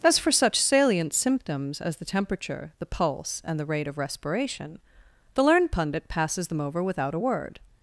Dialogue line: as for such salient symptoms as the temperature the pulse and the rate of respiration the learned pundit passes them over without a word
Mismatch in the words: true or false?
false